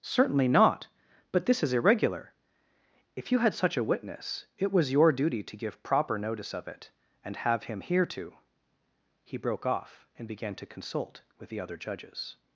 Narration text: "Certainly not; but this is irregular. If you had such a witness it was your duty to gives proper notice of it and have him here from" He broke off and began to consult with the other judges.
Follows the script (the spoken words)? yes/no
no